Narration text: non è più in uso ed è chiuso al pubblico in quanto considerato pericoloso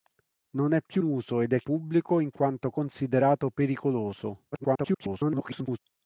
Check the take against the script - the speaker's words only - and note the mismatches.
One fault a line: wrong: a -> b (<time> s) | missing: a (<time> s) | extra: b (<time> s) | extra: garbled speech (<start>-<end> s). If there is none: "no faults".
missing: in (1.0 s)
missing: chiuso al (1.6 s)
extra: garbled speech (4.5-5.8 s)